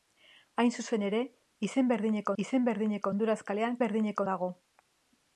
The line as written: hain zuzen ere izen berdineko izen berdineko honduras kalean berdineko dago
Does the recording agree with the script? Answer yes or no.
yes